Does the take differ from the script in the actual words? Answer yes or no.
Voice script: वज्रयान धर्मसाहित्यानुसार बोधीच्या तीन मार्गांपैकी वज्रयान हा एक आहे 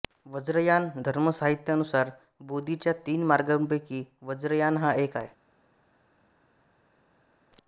no